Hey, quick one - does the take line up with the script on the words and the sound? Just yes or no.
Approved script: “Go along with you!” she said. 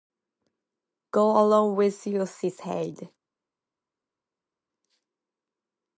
yes